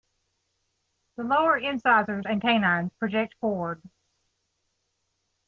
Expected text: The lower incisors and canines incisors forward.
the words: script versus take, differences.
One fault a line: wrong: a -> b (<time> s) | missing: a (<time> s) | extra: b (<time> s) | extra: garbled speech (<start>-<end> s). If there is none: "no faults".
wrong: incisors -> project (3.0 s)